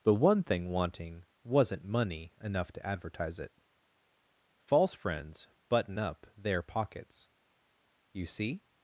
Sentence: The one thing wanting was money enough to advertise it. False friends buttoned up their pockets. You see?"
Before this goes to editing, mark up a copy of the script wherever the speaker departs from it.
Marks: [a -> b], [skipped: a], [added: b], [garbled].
The one thing wanting [was -> wasn't] money enough to advertise it. False friends [buttoned -> button] up their pockets. You see?"